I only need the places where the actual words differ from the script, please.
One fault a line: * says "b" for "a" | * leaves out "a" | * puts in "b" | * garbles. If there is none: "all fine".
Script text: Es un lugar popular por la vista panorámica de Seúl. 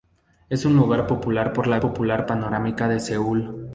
* says "popular" for "vista"